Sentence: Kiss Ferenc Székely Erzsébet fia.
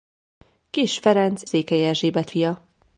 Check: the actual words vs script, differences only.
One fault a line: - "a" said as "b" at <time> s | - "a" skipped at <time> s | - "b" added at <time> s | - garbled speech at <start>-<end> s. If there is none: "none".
none